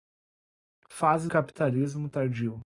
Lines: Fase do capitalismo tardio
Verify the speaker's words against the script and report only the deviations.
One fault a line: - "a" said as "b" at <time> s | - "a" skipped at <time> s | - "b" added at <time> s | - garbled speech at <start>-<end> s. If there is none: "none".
- "do" skipped at 1.3 s